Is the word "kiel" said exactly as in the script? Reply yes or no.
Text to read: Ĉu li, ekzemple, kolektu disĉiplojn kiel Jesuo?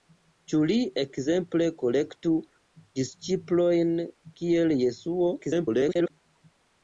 yes